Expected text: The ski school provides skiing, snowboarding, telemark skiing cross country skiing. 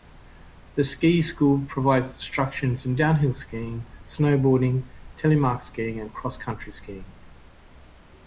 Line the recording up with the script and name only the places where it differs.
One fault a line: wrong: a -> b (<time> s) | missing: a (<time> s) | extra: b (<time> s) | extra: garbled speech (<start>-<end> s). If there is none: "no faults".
extra: instruction in downhill (2.1 s)
extra: and (6.0 s)